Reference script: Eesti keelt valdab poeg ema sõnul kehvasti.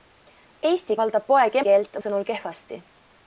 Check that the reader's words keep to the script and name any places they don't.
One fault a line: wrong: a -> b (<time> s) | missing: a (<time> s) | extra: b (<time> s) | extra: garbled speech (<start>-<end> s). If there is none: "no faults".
missing: keelt (1.0 s)
wrong: ema -> keelt (1.7 s)